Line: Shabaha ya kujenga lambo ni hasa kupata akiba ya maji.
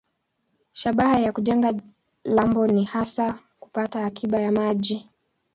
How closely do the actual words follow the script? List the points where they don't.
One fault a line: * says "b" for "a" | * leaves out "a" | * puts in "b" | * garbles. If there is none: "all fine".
all fine